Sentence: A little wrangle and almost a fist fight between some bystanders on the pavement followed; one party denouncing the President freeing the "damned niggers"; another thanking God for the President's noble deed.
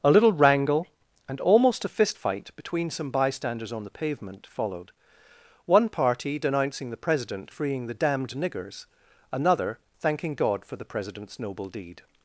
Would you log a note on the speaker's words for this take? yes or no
no